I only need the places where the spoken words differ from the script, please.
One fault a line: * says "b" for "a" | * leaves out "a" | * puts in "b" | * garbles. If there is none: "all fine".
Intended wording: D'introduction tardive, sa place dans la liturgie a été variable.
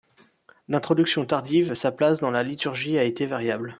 all fine